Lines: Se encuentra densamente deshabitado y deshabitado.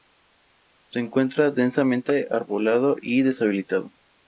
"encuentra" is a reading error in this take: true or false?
false